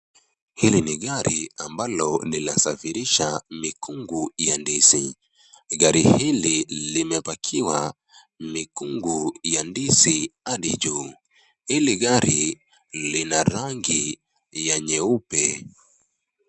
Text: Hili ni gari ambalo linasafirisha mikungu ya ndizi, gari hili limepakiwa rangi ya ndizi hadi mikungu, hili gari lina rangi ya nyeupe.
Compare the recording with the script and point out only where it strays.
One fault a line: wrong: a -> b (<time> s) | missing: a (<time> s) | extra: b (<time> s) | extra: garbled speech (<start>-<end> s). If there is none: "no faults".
wrong: rangi -> mikungu (8.4 s)
wrong: mikungu -> juu (10.8 s)